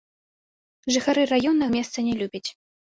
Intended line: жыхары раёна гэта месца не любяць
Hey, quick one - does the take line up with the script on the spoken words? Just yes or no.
no